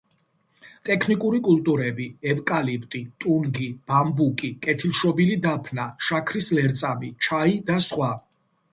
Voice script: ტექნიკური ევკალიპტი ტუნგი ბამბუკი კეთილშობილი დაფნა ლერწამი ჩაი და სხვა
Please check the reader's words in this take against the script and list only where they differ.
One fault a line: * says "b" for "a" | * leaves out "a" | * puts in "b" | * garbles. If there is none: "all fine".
* puts in "კულტურები"
* puts in "შაქრის"